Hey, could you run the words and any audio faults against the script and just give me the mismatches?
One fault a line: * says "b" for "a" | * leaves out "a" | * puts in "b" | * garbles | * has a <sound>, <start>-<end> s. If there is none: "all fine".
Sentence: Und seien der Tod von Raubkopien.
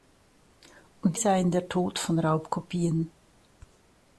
all fine